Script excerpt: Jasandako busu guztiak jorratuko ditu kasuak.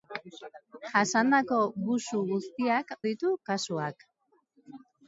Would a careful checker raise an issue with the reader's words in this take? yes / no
yes